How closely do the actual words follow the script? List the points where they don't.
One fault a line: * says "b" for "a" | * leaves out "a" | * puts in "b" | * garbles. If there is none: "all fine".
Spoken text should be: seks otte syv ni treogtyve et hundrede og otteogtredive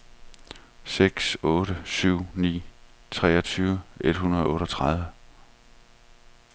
all fine